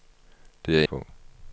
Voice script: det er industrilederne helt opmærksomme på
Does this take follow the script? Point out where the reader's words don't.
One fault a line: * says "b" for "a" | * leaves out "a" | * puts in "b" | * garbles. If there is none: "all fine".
* leaves out "industrilederne helt opmærksomme"